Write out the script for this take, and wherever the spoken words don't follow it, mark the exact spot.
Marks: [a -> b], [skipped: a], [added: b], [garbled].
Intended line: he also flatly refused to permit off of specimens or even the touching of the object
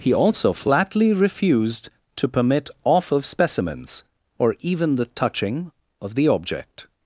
he also flatly refused to permit off of specimens or even the touching of the object